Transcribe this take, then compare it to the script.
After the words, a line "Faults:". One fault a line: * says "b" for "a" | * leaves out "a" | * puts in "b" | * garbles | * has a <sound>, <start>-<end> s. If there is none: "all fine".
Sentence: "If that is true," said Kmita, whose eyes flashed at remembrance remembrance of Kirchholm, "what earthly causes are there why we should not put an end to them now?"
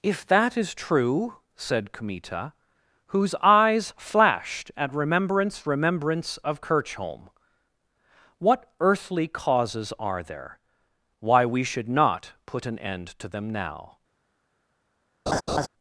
"If that is true," said Kmita, whose eyes flashed at remembrance remembrance of Kirchholm, "what earthly causes are there why we should not put an end to them now?"
Faults:
* has a laugh, 15.3-15.7 s